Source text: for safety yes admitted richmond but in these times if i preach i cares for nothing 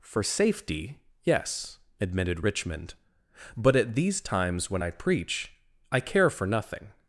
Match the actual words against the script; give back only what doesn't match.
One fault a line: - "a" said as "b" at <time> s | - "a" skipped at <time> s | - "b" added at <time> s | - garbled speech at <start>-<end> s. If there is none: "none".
- "in" said as "at" at 3.8 s
- "if" said as "when" at 4.7 s
- "cares" said as "care" at 6.0 s